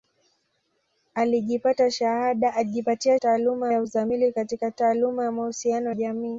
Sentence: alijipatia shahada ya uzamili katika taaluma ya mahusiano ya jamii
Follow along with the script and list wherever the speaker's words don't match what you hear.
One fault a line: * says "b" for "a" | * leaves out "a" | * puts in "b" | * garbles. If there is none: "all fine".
* says "taaluma" for "shahada"
* leaves out "ya"